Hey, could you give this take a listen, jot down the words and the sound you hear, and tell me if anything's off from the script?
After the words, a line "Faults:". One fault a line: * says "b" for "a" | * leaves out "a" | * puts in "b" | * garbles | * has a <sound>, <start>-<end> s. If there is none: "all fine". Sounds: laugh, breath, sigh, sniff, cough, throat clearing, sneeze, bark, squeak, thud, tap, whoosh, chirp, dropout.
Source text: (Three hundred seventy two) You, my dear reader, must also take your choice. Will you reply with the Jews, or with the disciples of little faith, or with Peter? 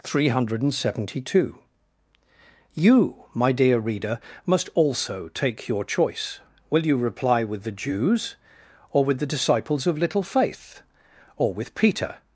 (Three hundred seventy two) You, my dear reader, must also take your choice. Will you reply with the Jews, or with the disciples of little faith, or with Peter?
Faults:
all fine